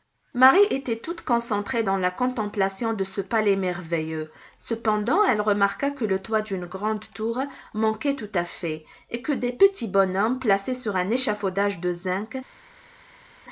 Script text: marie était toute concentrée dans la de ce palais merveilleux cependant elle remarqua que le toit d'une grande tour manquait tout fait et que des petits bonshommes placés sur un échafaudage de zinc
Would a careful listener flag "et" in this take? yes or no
no